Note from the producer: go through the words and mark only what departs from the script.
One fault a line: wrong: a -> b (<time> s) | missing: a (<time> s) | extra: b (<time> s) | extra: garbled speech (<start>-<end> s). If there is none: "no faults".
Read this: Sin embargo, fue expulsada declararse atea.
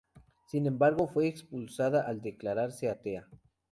extra: al (2.1 s)